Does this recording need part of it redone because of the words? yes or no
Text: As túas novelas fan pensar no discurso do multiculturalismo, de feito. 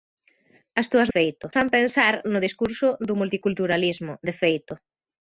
yes